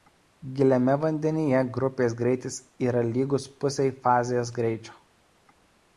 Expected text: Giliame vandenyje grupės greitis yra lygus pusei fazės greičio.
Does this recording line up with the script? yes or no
yes